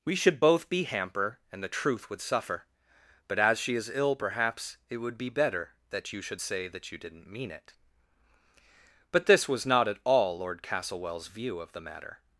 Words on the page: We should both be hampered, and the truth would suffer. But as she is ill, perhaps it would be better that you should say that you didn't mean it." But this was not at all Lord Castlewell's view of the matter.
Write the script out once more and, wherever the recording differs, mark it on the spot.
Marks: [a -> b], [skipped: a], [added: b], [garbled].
We should both be [hampered, -> hamper] and the truth would suffer. But as she is ill, perhaps it would be better that you should say that you didn't mean it." But this was not at all Lord Castlewell's view of the matter.